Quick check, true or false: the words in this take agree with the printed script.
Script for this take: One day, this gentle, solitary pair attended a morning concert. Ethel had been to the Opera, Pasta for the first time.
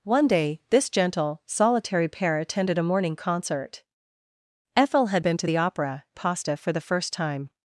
true